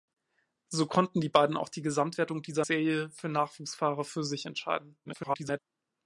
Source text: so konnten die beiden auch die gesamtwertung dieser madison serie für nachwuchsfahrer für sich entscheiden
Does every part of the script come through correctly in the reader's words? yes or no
no